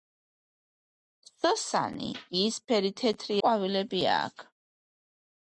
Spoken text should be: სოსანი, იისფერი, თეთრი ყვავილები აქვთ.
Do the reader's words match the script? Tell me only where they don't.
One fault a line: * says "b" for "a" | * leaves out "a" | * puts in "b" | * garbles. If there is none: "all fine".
all fine